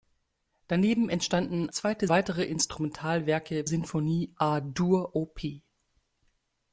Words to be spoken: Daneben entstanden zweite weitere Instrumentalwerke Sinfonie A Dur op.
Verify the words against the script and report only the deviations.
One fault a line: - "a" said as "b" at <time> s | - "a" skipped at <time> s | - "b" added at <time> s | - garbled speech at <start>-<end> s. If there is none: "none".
none